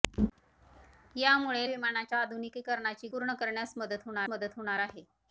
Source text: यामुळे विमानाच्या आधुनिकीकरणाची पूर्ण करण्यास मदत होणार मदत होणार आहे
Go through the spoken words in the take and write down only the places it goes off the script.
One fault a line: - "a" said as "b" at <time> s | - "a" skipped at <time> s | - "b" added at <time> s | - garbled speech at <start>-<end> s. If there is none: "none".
none